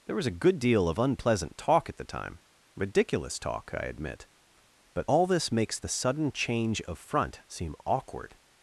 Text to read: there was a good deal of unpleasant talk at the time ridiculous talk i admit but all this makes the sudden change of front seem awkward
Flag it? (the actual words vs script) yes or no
no